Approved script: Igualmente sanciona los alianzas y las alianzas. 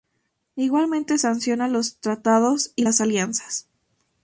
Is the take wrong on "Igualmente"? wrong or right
right